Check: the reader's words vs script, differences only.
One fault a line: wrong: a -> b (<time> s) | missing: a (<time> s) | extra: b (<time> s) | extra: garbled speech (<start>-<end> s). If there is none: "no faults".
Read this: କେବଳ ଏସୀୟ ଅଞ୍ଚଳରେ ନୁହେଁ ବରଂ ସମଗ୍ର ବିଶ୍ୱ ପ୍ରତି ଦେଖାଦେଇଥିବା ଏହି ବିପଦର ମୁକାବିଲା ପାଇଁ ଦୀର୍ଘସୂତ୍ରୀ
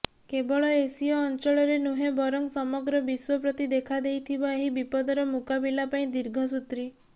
no faults